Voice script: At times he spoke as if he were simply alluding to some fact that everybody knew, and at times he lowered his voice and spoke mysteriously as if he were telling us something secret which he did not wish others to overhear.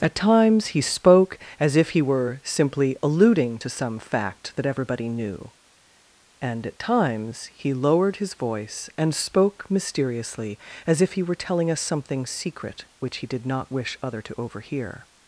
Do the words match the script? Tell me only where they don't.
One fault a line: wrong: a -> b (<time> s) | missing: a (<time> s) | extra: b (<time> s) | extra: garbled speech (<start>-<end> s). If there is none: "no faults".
wrong: others -> other (14.0 s)